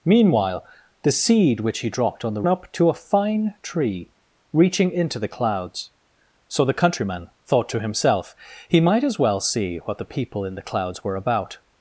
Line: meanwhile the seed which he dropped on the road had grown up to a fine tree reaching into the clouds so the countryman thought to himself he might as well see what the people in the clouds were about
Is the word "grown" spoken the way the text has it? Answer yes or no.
no